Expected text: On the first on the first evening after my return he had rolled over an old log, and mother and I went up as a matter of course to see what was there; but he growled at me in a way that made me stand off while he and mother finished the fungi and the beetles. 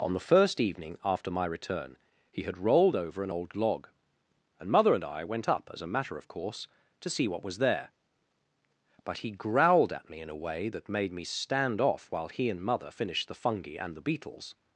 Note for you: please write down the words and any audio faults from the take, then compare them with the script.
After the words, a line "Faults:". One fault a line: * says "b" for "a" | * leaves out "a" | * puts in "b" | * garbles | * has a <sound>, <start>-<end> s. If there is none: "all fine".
On the first evening after my return he had rolled over an old log, and mother and I went up as a matter of course to see what was there; but he growled at me in a way that made me stand off while he and mother finished the fungi and the beetles.
Faults:
* leaves out "on the first"